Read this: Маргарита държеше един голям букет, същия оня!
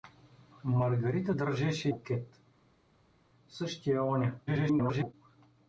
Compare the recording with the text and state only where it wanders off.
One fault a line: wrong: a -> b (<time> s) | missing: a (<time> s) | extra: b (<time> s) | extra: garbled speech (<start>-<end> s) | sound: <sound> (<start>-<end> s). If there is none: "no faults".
missing: един голям (1.9 s)
extra: garbled speech (4.5-5.1 s)